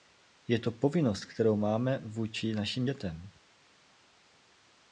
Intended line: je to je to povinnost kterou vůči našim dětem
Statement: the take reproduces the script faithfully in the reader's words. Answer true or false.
false